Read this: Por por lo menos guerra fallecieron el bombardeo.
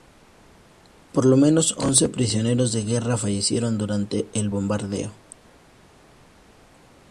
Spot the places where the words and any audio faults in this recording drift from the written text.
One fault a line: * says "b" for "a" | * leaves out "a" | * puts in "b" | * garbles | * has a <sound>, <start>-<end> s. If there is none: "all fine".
* leaves out "por"
* puts in "once prisioneros de"
* puts in "durante"